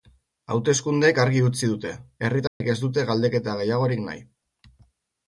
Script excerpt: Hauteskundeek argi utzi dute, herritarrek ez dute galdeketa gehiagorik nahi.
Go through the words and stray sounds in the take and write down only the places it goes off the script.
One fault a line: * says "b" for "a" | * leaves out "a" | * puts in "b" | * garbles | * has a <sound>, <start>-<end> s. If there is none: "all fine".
* has a dropout, 2.5-2.6 s